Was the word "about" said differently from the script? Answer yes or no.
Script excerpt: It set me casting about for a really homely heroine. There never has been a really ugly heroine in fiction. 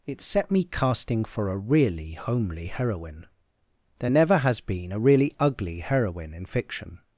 yes